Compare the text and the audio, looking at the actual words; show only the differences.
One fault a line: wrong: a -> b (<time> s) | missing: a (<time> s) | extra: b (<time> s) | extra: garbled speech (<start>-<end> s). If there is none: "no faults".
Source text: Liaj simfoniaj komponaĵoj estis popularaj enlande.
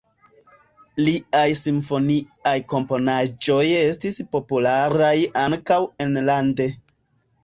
extra: ankaŭ (5.4 s)